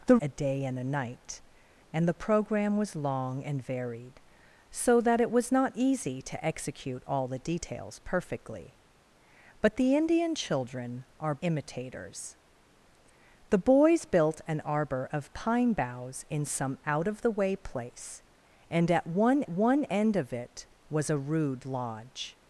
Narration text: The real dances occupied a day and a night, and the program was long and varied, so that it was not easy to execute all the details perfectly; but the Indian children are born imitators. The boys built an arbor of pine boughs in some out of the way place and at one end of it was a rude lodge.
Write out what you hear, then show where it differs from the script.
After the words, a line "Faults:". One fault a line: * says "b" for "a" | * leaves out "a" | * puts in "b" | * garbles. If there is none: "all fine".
The a day and a night, and the program was long and varied, so that it was not easy to execute all the details perfectly; but the Indian children are imitators. The boys built an arbor of pine boughs in some out of the way place and at one one end of it was a rude lodge.
Faults:
* leaves out "real dances occupied"
* leaves out "born"
* puts in "one"